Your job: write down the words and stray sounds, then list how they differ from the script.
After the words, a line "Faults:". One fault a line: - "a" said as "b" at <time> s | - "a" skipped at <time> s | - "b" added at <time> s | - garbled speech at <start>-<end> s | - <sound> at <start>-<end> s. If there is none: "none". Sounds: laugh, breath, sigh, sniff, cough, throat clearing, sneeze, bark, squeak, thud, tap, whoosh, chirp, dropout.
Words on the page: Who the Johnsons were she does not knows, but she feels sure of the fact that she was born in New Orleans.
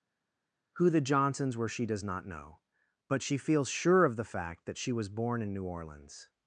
Who the Johnsons were she does not know, but she feels sure of the fact that she was born in New Orleans.
Faults:
- "knows" said as "know" at 2.2 s